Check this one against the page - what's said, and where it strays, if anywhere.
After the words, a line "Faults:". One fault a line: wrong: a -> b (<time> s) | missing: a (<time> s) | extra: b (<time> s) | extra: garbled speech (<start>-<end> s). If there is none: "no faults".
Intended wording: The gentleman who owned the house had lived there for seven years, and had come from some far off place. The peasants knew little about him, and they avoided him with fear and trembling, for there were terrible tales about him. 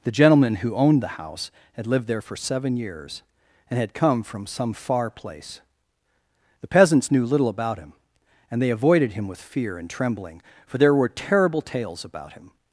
The gentleman who owned the house had lived there for seven years, and had come from some far place. The peasants knew little about him, and they avoided him with fear and trembling, for there were terrible tales about him.
Faults:
missing: off (5.1 s)